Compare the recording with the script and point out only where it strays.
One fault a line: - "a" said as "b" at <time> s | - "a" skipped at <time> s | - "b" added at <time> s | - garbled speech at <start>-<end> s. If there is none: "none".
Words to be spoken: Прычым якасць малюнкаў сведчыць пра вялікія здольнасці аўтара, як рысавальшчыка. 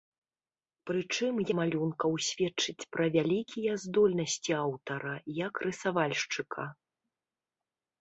- "якасць" skipped at 1.4 s